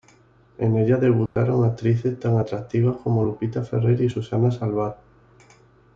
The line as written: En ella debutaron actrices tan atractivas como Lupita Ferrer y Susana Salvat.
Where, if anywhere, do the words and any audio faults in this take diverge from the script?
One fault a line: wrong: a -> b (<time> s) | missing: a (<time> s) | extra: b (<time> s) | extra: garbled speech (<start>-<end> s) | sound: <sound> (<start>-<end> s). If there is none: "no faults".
sound: dropout (1.3-1.4 s)